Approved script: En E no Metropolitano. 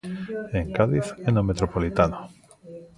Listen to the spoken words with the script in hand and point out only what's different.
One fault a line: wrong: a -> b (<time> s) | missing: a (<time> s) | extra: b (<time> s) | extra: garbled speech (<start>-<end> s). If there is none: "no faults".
extra: Cádiz (0.8 s)